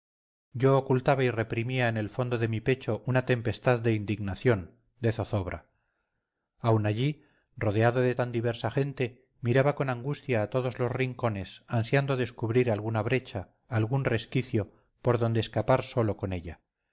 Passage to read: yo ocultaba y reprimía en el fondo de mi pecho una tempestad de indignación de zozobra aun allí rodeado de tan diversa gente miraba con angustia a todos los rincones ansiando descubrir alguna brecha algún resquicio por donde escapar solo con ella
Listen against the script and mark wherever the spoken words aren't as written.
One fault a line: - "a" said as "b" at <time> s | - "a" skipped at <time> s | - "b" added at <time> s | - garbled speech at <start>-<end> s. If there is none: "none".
none